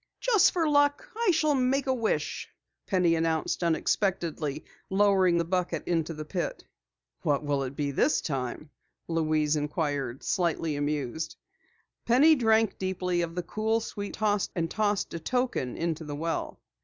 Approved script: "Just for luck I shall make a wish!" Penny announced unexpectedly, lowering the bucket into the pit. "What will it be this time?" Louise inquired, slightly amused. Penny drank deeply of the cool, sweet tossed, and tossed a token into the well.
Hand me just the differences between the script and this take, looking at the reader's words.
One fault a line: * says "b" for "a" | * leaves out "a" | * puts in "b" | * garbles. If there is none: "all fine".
all fine